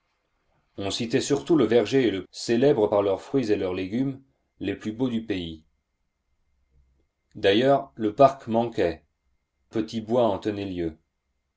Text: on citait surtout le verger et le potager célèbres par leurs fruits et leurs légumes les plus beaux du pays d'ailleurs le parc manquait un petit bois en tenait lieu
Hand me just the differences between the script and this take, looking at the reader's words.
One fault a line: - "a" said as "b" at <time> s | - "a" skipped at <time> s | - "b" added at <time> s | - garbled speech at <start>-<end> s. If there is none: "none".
- "potager" skipped at 2.2 s
- "un" skipped at 9.0 s